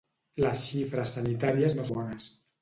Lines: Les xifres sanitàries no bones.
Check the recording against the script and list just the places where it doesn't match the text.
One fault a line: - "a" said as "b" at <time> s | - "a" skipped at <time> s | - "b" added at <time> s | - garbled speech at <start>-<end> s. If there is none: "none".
none